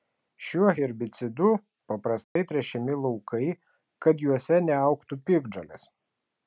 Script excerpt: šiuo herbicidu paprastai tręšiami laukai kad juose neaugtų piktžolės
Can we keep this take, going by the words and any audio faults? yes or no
no